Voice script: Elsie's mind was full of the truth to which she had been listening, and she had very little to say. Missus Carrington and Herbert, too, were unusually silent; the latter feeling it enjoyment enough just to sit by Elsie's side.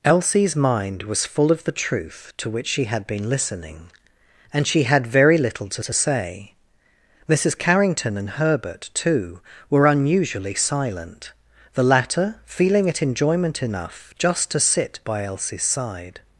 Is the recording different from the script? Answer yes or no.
yes